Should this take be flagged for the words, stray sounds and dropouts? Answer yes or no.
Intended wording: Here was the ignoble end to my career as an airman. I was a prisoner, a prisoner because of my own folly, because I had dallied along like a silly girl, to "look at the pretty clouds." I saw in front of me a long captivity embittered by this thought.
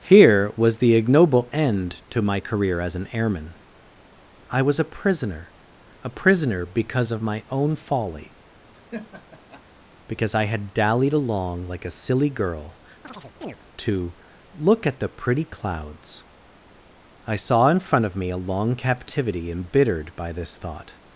yes